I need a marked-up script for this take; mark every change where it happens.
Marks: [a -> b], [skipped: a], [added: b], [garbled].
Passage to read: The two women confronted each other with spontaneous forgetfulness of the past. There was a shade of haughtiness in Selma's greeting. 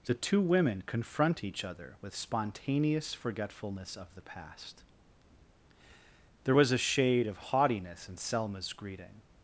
The two women [confronted -> confront] each other with spontaneous forgetfulness of the past. There was a shade of haughtiness in Selma's greeting.